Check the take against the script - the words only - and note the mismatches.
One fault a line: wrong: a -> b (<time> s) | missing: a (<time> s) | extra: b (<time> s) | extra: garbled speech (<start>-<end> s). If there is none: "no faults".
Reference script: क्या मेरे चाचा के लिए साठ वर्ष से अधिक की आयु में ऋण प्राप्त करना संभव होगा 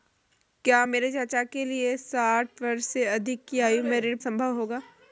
missing: प्राप्त करना (4.2 s)